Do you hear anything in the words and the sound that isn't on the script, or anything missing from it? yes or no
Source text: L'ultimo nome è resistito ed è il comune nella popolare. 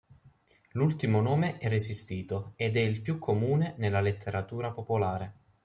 yes